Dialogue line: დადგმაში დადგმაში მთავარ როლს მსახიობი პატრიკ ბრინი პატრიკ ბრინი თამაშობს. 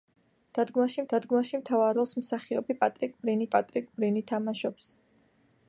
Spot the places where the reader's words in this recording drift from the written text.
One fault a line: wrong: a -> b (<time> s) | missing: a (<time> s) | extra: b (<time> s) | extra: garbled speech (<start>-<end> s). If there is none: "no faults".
no faults